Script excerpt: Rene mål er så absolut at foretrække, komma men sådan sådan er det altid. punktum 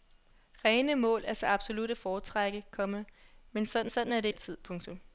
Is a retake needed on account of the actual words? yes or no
no